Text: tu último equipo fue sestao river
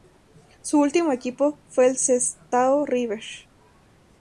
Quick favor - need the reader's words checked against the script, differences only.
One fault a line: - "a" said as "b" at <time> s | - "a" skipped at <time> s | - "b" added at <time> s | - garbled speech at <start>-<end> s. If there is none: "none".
- "tu" said as "su" at 0.6 s
- "el" added at 1.9 s